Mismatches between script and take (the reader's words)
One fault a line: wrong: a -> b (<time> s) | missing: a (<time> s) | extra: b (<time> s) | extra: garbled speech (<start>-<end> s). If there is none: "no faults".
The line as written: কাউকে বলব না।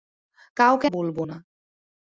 no faults